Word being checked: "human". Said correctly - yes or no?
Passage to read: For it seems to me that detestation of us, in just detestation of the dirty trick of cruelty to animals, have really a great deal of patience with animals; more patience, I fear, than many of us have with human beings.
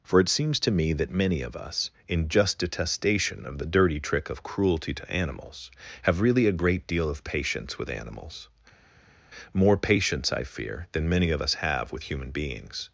yes